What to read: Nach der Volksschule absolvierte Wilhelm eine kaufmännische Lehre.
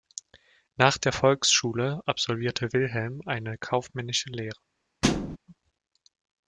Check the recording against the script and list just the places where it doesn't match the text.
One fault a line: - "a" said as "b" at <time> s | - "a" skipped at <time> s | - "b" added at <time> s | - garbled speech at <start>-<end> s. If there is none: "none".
none